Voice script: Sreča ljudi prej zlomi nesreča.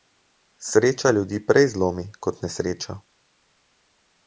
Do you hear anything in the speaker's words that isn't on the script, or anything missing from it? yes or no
yes